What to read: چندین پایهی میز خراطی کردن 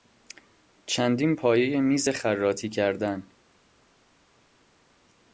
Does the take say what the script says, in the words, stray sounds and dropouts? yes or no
yes